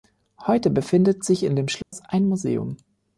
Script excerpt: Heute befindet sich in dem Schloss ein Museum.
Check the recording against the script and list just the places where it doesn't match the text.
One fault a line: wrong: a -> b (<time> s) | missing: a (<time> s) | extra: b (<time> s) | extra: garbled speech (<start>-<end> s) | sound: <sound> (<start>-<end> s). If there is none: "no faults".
sound: dropout (1.8-1.9 s)